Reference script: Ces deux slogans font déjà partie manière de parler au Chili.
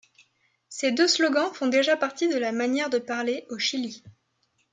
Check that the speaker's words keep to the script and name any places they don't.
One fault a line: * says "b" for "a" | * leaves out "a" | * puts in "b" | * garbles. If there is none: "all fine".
* puts in "de la"